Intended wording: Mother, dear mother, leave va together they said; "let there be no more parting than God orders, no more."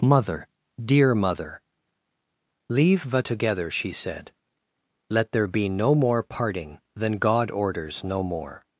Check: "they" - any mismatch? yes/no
yes